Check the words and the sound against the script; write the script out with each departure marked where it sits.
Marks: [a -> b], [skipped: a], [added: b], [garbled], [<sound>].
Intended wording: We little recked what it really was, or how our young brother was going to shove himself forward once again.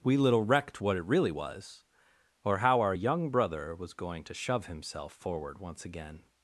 We little recked what it really was, or how our young brother was going to shove himself forward once again.